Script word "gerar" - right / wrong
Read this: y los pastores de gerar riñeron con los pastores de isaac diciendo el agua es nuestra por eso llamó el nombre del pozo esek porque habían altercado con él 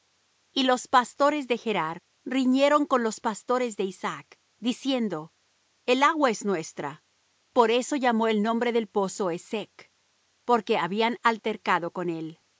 right